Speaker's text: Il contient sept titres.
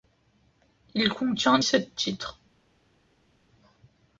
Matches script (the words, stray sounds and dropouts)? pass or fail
pass